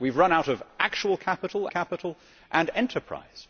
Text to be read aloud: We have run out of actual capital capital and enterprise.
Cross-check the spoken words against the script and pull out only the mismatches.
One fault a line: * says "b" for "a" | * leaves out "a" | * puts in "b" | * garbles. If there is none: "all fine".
all fine